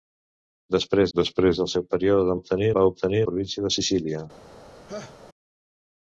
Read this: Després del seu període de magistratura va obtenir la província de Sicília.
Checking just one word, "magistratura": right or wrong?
wrong